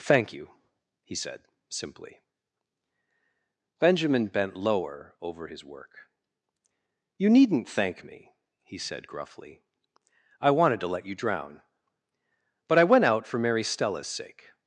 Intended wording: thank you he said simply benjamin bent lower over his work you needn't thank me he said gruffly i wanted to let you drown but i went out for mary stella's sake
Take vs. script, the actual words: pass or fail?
pass